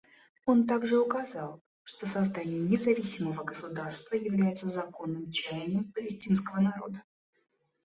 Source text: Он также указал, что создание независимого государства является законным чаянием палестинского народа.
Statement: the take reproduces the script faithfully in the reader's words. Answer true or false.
true